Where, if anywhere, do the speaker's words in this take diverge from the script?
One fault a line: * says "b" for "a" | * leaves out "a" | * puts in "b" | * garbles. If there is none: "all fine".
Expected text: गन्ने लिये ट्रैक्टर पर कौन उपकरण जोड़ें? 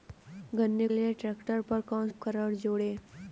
all fine